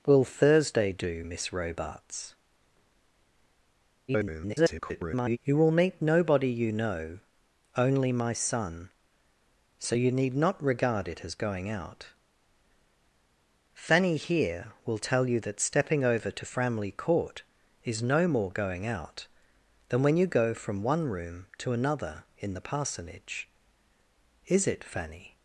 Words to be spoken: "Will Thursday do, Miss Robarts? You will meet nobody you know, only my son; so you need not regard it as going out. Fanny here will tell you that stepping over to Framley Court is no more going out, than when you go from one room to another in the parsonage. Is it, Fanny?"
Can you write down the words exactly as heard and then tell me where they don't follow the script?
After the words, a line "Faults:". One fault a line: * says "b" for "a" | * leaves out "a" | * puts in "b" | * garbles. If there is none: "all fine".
"Will Thursday do, Miss Robarts? [garbled] You will meet nobody you know, only my son; so you need not regard it as going out. Fanny here will tell you that stepping over to Framley Court is no more going out, than when you go from one room to another in the parsonage. Is it, Fanny?"
Faults:
* garbles